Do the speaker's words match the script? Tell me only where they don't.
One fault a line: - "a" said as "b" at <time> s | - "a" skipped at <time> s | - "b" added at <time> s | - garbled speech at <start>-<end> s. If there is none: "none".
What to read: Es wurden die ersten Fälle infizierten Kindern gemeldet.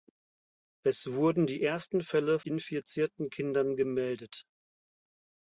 none